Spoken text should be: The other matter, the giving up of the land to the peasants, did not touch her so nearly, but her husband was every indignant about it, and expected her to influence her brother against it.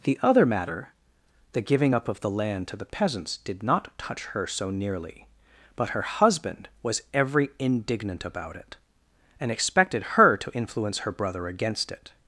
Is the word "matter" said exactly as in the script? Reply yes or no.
yes